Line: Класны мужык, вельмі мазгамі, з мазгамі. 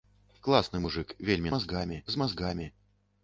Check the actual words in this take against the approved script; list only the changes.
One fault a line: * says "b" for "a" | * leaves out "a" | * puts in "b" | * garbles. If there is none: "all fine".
all fine